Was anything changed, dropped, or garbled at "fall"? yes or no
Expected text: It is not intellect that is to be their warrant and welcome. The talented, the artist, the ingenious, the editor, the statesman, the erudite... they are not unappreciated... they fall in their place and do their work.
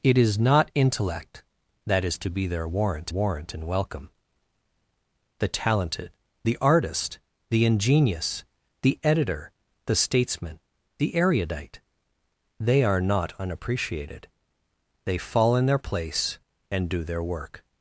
no